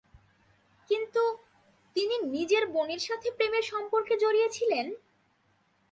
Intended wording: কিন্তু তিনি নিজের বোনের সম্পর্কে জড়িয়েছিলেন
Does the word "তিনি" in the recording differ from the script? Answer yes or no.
no